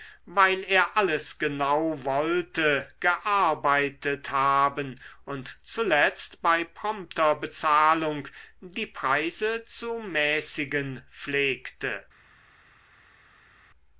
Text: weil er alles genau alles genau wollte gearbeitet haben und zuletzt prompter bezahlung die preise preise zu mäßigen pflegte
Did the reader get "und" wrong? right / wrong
right